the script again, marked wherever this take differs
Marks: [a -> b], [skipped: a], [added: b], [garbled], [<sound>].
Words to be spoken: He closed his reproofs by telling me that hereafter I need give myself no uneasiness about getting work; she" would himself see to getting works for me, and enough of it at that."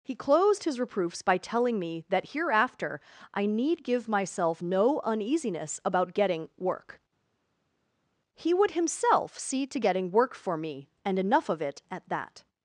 He closed his reproofs by telling me that hereafter I need give myself no uneasiness about getting work; [she" -> he] would himself see to getting [works -> work] for me, and enough of it at that."